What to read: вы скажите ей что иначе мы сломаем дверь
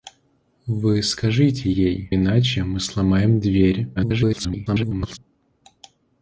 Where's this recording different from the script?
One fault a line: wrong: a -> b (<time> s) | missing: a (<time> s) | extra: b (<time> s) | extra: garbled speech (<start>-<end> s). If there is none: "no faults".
missing: что (2.1 s)
extra: garbled speech (4.0-5.2 s)